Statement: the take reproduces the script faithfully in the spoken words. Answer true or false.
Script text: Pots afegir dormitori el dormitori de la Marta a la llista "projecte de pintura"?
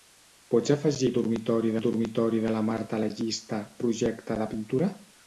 true